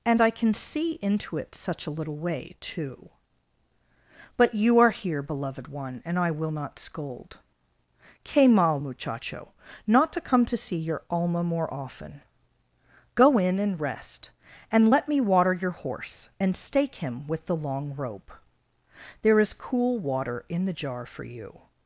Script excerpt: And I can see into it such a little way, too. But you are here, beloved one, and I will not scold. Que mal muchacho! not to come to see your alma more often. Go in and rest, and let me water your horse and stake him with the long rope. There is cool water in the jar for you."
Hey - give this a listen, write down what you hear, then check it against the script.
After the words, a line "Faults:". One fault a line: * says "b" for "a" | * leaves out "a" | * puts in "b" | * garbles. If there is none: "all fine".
And I can see into it such a little way, too. But you are here, beloved one, and I will not scold. Que mal muchacho! not to come to see your alma more often. Go in and rest, and let me water your horse and stake him with the long rope. There is cool water in the jar for you."
Faults:
all fine